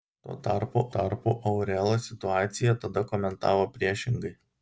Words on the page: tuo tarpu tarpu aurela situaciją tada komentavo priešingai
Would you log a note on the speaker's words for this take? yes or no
no